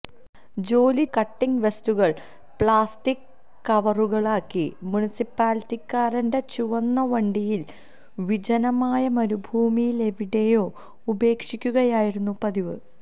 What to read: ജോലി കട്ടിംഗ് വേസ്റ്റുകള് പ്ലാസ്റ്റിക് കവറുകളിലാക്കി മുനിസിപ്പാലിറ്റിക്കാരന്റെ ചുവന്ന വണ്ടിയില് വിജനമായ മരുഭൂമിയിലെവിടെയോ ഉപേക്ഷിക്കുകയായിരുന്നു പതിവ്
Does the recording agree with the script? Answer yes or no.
yes